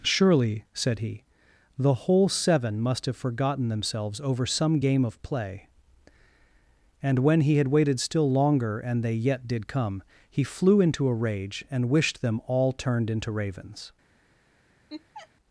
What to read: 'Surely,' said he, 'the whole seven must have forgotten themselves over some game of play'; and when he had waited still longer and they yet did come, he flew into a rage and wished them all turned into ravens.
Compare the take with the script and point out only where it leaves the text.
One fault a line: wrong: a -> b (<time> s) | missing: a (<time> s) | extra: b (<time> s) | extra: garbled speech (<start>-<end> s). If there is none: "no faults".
no faults